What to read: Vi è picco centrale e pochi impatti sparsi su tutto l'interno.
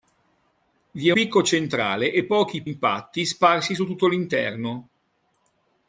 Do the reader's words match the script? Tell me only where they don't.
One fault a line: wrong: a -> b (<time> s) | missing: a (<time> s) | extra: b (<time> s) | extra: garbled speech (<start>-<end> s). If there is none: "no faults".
no faults